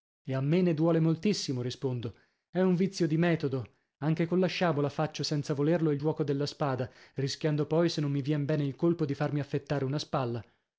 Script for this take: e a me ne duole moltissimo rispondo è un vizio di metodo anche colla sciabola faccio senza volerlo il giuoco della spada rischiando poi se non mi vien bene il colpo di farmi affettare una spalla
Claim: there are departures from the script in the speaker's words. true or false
false